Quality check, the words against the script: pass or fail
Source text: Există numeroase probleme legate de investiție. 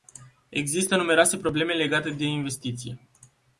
pass